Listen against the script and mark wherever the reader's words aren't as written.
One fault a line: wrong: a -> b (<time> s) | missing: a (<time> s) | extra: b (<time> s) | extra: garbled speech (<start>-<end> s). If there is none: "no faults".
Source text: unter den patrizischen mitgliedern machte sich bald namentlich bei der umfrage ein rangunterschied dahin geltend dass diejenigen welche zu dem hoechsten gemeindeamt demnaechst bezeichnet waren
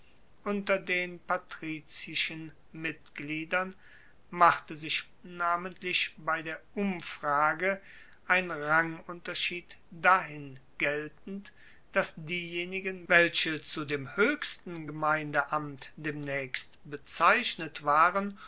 missing: bald (5.1 s)